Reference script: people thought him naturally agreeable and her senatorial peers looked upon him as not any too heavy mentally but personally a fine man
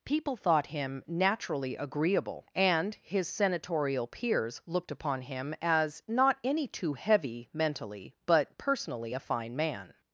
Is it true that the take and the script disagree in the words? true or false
true